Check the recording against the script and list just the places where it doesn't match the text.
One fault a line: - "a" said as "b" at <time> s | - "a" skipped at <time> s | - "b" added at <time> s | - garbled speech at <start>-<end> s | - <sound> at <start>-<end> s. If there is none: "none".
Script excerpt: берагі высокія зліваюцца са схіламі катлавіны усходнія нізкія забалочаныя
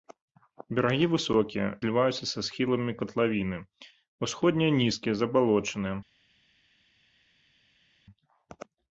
none